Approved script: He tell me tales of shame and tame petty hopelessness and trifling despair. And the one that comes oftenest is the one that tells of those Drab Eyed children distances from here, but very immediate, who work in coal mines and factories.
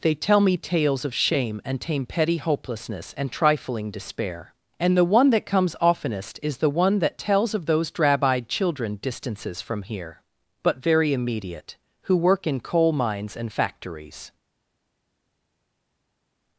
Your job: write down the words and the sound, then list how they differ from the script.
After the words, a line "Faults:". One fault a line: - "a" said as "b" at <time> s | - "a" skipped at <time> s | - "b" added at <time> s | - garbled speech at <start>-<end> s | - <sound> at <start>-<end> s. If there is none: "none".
They tell me tales of shame and tame petty hopelessness and trifling despair. And the one that comes oftenest is the one that tells of those Drab Eyed children distances from here, but very immediate, who work in coal mines and factories.
Faults:
- "He" said as "They" at 0.0 s